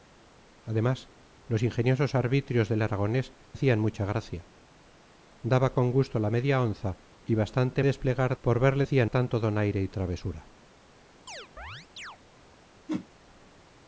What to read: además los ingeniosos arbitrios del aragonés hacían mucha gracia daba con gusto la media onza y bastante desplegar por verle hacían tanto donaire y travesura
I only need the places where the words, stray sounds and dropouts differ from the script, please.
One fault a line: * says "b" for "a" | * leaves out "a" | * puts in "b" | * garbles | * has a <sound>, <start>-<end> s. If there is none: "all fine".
* has a chirp, 11.3-12.2 s
* has a whoosh, 12.9-13.1 s